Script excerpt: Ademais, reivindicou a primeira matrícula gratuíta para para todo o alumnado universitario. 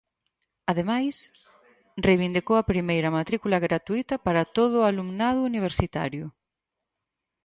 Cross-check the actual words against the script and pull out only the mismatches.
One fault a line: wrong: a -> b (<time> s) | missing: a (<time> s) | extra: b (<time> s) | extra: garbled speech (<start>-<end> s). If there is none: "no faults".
missing: para (4.5 s)